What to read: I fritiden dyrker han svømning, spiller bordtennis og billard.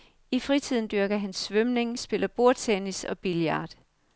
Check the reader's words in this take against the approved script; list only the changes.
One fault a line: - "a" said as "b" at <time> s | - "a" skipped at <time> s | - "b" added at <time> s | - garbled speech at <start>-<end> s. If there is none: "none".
none